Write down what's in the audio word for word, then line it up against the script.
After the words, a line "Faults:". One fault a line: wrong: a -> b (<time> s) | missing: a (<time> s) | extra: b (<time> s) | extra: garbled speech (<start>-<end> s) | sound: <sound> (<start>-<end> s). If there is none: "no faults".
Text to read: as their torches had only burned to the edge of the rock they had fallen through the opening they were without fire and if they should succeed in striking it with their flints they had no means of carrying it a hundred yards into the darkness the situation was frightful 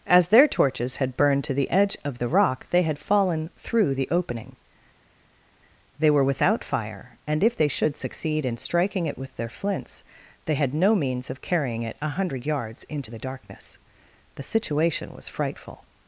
as their torches had burned to the edge of the rock they had fallen through the opening they were without fire and if they should succeed in striking it with their flints they had no means of carrying it a hundred yards into the darkness the situation was frightful
Faults:
missing: only (1.2 s)